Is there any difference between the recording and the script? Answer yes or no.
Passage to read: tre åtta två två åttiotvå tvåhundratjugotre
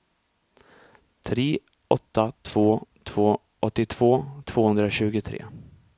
no